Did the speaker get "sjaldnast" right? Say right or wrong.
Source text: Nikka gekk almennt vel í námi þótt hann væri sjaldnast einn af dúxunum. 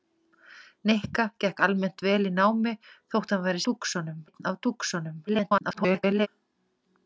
wrong